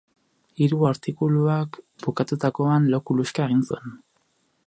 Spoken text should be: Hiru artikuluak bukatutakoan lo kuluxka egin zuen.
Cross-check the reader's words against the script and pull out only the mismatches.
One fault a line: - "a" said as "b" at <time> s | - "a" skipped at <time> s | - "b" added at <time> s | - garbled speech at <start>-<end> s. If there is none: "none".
none